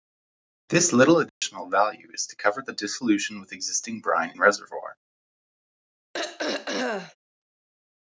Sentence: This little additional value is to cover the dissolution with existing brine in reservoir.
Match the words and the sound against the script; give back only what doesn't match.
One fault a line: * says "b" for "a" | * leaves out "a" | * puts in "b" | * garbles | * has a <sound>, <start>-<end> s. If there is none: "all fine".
* has a dropout, 1.3-1.4 s
* has a throat clearing, 6.1-7.2 s